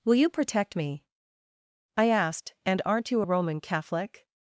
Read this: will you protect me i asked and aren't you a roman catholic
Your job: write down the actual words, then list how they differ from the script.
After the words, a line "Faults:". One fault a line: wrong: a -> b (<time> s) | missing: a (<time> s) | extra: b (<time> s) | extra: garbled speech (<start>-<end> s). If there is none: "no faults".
will you protect me i asked and aren't you a roman catholic
Faults:
no faults